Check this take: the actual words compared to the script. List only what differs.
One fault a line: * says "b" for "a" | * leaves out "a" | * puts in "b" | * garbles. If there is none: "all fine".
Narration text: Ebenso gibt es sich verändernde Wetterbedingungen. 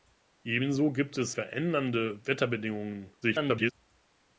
* leaves out "sich"
* garbles